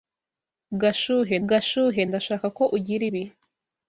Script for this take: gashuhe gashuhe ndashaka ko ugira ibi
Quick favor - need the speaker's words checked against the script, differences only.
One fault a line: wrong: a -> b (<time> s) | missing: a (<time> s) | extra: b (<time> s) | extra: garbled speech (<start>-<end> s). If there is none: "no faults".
no faults